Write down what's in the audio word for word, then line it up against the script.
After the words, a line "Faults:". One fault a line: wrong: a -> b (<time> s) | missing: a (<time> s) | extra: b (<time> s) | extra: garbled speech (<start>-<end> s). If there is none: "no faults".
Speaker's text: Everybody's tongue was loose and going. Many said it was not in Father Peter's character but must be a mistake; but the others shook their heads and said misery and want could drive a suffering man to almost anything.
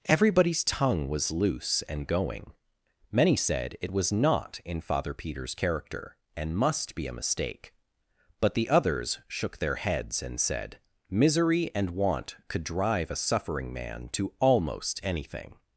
Everybody's tongue was loose and going. Many said it was not in Father Peter's character and must be a mistake; but the others shook their heads and said misery and want could drive a suffering man to almost anything.
Faults:
wrong: but -> and (6.4 s)